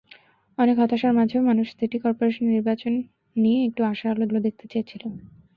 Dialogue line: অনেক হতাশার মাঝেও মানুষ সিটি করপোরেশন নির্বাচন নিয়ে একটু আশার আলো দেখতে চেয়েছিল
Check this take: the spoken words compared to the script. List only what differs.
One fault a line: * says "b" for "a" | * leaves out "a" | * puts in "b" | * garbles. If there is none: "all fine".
* puts in "আলো"